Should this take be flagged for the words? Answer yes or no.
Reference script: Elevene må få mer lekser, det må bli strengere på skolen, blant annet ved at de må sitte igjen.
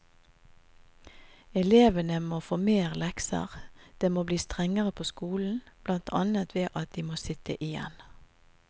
no